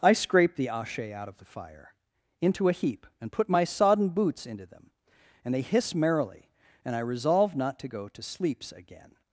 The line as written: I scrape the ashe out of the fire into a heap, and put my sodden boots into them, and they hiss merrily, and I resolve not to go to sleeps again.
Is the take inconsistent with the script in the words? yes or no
no